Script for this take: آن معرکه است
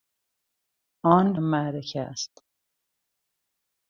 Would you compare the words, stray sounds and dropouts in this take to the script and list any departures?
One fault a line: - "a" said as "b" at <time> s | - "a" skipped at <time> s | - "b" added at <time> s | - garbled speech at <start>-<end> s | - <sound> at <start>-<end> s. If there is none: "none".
none